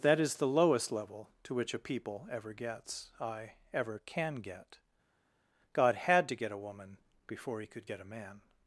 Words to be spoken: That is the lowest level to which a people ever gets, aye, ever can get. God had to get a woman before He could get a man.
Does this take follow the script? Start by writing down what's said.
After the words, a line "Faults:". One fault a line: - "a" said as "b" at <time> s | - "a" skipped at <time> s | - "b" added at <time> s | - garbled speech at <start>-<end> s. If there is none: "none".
That is the lowest level to which a people ever gets, aye, ever can get. God had to get a woman before He could get a man.
Faults:
none